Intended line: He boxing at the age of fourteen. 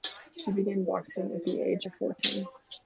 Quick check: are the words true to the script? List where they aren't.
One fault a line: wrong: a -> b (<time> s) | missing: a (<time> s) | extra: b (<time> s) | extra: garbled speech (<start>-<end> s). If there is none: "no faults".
extra: began (0.5 s)